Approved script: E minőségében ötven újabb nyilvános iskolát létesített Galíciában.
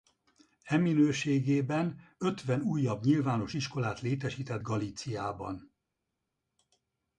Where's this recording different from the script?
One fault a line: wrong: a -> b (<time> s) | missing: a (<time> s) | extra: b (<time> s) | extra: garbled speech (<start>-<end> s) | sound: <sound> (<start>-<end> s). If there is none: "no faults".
no faults